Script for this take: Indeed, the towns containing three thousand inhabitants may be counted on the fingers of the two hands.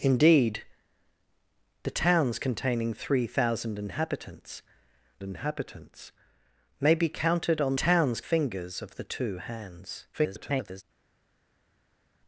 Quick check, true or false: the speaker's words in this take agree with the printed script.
false